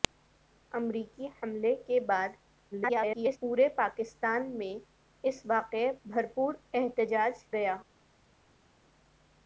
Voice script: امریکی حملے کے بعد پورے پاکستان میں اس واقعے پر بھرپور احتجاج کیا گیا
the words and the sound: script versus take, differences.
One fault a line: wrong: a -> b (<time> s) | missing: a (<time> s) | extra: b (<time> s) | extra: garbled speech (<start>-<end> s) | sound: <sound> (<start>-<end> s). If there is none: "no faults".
extra: garbled speech (2.7-3.4 s)
missing: پر (5.9 s)
missing: کیا (7.3 s)